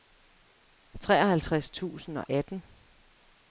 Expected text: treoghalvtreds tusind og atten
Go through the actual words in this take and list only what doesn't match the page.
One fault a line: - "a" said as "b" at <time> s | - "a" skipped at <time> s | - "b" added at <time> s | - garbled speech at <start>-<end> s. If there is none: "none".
none